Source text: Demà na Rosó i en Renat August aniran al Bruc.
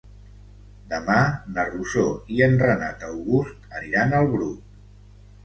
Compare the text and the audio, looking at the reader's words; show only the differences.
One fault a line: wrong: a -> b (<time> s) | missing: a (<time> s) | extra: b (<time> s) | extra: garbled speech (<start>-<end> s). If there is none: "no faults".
no faults